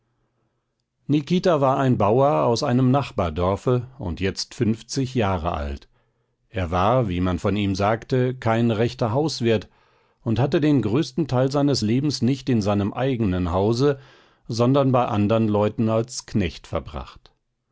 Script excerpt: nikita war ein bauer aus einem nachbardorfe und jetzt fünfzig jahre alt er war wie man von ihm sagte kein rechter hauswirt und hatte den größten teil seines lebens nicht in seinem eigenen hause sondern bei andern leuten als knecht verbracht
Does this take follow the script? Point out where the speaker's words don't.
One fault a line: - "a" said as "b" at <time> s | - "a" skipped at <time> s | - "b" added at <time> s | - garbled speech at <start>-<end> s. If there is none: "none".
none